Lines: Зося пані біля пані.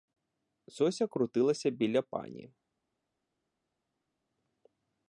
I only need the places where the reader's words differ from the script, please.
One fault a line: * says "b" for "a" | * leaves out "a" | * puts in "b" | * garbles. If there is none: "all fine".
* says "крутилася" for "пані"